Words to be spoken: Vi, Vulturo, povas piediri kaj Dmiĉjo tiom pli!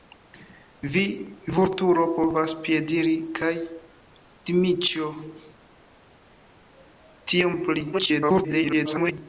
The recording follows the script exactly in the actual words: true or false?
false